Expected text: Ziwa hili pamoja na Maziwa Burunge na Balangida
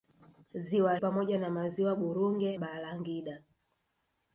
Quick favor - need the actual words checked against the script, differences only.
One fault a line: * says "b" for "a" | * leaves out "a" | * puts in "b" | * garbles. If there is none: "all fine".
* leaves out "hili"
* leaves out "na"